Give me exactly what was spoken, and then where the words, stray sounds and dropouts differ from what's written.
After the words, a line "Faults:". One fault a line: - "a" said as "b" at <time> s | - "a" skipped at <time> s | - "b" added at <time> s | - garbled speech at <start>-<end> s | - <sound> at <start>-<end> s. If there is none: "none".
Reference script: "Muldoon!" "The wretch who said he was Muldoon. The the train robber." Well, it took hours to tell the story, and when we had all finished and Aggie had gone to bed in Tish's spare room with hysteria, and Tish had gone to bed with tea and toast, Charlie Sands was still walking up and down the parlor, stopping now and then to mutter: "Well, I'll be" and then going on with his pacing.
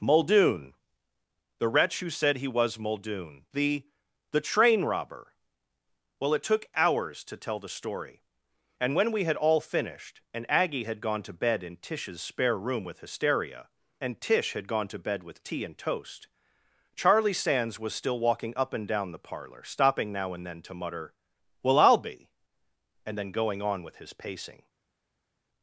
"Muldoon!" "The wretch who said he was Muldoon. The the train robber." Well, it took hours to tell the story, and when we had all finished and Aggie had gone to bed in Tish's spare room with hysteria, and Tish had gone to bed with tea and toast, Charlie Sands was still walking up and down the parlor, stopping now and then to mutter: "Well, I'll be" and then going on with his pacing.
Faults:
none